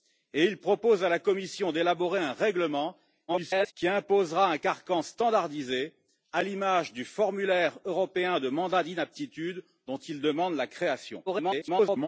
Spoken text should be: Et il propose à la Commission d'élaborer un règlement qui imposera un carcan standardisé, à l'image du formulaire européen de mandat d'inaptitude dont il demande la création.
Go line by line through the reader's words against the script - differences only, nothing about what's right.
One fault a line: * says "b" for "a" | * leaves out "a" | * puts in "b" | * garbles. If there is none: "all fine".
* garbles
* garbles